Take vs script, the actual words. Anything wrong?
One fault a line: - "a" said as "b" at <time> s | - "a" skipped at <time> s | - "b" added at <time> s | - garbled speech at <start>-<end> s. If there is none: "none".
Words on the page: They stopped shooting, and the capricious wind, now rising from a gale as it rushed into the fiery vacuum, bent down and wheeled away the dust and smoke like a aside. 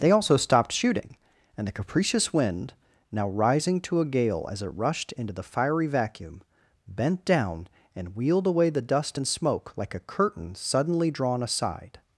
- "also" added at 0.1 s
- "from" said as "to" at 3.8 s
- "curtain suddenly drawn" added at 10.0 s